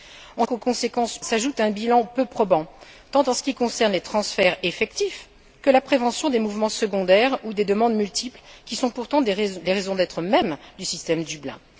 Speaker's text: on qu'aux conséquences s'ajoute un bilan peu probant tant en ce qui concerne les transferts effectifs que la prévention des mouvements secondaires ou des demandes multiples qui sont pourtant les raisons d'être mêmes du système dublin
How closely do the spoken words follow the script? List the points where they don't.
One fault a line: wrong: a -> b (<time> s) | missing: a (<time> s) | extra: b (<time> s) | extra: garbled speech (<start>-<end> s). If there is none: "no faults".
no faults